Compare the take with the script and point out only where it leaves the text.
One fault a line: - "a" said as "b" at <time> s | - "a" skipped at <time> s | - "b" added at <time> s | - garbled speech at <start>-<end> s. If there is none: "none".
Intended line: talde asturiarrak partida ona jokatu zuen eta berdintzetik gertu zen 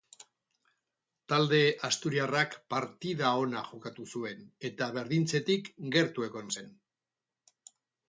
- "egon" added at 6.3 s